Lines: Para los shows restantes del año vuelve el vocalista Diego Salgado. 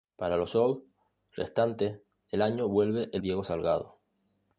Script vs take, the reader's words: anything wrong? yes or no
yes